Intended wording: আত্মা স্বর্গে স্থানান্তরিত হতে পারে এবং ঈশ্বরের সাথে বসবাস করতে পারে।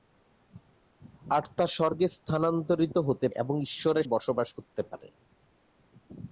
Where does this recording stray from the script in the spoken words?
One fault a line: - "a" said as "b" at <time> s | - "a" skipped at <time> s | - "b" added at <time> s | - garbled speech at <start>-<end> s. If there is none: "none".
- "পারে" skipped at 3.3 s
- "সাথে" skipped at 4.1 s